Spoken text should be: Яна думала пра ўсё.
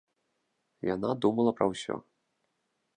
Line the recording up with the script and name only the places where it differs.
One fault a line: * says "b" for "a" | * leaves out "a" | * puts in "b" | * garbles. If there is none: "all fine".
all fine